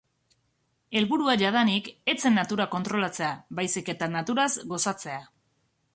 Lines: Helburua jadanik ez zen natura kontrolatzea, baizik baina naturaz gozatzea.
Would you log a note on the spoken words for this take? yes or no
yes